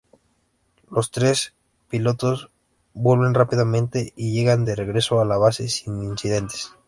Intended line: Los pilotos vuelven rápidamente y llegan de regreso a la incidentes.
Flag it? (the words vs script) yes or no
yes